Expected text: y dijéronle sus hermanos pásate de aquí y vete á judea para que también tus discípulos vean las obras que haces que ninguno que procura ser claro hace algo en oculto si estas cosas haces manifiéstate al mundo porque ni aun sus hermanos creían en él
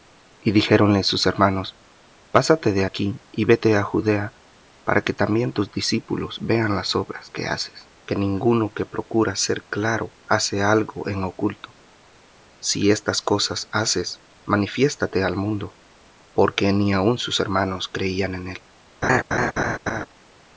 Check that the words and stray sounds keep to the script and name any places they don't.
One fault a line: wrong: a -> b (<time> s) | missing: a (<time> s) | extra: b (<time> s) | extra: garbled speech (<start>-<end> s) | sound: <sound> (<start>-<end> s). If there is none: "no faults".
sound: laugh (19.0-20.1 s)